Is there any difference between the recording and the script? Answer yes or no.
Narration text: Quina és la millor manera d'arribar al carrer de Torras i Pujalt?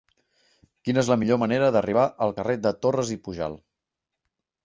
no